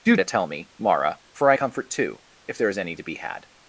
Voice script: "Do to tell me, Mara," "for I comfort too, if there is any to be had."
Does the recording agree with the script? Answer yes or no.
yes